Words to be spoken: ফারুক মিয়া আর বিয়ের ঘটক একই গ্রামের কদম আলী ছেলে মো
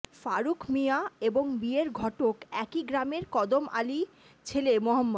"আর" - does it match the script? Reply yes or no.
no